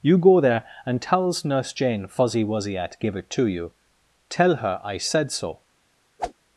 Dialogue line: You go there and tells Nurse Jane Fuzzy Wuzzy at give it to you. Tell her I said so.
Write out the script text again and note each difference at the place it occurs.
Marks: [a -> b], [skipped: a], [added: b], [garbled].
You go there and tells Nurse Jane Fuzzy Wuzzy at give it to you. Tell her I said so.